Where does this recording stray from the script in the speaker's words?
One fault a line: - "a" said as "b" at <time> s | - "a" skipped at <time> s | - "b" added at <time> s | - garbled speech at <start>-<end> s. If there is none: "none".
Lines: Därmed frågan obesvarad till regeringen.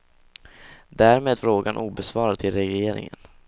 none